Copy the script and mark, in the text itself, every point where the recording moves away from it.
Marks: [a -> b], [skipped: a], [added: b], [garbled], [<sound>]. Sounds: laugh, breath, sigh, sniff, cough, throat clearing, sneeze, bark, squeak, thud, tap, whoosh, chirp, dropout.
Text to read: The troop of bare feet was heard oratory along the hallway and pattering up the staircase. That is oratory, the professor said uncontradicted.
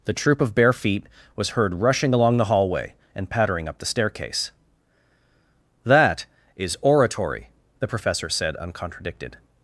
The troop of bare feet was heard [oratory -> rushing] along the hallway and pattering up the staircase. That is oratory, the professor said uncontradicted.